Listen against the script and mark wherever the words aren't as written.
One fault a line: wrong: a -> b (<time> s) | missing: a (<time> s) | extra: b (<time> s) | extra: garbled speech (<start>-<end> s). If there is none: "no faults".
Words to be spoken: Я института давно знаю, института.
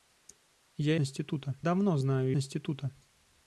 no faults